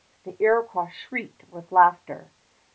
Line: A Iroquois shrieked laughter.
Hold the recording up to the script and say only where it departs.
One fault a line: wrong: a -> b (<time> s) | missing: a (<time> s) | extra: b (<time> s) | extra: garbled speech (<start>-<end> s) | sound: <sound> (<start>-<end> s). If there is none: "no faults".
wrong: A -> The (0.2 s)
extra: with (1.5 s)